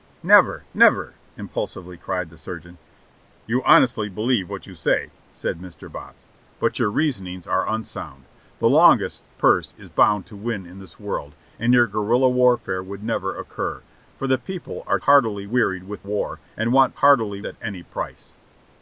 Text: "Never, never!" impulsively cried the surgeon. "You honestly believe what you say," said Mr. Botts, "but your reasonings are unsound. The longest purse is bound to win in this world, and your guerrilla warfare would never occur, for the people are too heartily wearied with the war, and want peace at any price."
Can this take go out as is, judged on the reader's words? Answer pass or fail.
fail